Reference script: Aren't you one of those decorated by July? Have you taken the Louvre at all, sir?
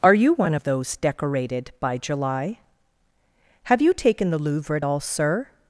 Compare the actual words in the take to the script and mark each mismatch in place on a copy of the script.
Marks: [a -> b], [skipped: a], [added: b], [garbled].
[Aren't -> Are] you one of those decorated by July? Have you taken the Louvre at all, sir?